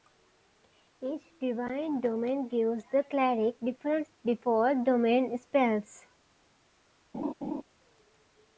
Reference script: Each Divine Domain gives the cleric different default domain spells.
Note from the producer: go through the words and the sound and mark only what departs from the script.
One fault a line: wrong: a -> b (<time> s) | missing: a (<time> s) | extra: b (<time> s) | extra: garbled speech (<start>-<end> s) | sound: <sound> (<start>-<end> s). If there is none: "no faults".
sound: laugh (7.1-7.6 s)